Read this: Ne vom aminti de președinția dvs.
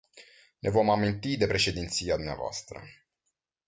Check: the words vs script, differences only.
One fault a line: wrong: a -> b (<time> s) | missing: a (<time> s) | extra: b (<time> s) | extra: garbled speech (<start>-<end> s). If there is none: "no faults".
no faults